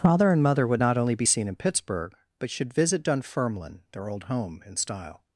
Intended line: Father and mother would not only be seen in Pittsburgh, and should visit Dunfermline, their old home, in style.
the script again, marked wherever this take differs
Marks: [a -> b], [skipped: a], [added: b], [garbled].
Father and mother would not only be seen in Pittsburgh, [and -> but] should visit Dunfermline, their old home, in style.